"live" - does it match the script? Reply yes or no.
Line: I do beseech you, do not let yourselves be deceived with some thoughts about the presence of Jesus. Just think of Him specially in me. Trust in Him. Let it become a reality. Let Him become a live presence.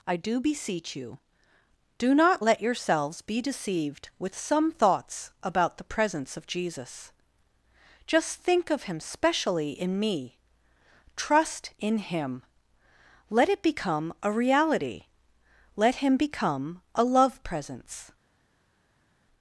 no